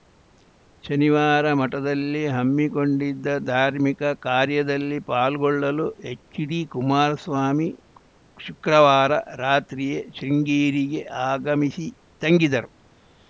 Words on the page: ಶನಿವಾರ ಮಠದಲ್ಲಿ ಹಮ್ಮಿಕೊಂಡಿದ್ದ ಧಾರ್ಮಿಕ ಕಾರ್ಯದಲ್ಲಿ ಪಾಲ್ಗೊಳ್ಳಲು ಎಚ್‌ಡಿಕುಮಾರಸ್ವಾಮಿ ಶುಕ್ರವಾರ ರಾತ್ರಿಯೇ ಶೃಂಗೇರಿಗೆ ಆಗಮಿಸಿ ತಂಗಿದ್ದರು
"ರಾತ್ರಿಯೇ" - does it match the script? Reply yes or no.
yes